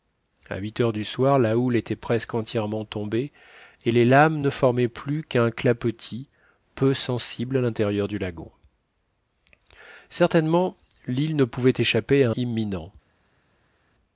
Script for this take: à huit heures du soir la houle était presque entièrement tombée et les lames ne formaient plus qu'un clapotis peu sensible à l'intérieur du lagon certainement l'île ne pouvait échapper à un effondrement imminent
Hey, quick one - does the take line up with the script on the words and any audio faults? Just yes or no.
no